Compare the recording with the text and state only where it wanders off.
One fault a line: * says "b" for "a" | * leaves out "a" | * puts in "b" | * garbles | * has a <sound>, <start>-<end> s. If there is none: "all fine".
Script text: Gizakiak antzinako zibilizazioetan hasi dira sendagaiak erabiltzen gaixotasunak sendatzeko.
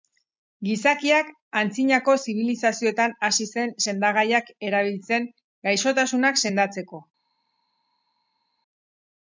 * says "zen" for "dira"